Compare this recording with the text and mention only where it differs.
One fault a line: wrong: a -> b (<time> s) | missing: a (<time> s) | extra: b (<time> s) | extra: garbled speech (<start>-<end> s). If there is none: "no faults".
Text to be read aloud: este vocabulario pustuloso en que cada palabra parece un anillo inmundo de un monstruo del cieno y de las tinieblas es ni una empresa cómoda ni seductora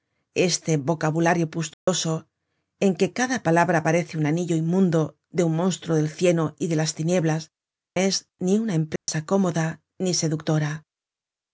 no faults